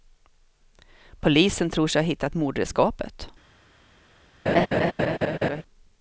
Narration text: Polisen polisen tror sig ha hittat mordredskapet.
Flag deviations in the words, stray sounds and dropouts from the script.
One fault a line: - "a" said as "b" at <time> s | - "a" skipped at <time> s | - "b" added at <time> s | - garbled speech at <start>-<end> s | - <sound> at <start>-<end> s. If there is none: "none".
- "polisen" skipped at 1.7 s
- laugh at 4.5-5.6 s